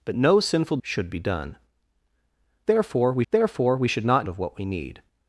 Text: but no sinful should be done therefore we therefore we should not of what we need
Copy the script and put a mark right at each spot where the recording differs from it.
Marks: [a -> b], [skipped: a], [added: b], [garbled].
but no sinful should be done therefore we therefore we should not of what we need